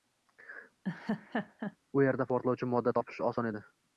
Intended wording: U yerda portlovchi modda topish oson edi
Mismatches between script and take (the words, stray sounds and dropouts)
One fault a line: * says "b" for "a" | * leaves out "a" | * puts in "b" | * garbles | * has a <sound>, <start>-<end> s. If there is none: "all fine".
* has a laugh, 0.8-1.8 s